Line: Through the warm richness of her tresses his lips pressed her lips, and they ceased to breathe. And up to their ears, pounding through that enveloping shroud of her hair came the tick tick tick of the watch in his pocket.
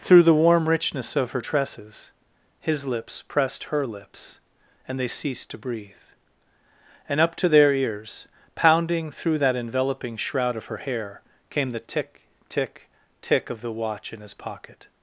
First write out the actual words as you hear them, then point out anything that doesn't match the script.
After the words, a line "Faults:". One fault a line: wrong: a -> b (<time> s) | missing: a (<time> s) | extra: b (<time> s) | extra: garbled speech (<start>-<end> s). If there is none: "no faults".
Through the warm richness of her tresses his lips pressed her lips, and they ceased to breathe. And up to their ears, pounding through that enveloping shroud of her hair came the tick tick tick of the watch in his pocket.
Faults:
no faults